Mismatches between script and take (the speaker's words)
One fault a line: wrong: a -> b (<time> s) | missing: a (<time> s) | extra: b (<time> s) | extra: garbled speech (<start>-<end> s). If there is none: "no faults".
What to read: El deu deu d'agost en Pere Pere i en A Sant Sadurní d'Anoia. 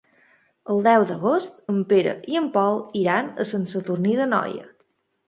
missing: deu (1.0 s)
missing: Pere (2.1 s)
extra: Pol iran (2.6 s)